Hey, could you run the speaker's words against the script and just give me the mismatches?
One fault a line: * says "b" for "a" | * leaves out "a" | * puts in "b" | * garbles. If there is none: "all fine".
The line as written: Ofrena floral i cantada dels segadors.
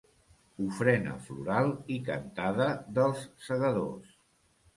all fine